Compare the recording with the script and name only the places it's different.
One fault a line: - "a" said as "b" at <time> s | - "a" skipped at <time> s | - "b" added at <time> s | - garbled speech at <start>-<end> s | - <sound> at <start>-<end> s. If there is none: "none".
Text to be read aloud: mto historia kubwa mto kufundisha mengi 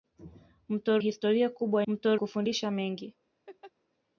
- laugh at 3.5-3.7 s